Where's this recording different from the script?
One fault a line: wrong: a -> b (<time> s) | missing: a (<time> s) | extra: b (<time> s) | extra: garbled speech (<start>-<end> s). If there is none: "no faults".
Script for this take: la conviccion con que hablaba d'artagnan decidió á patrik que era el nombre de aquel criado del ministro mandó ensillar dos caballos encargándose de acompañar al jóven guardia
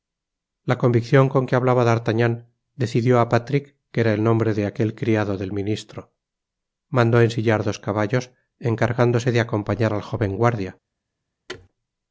no faults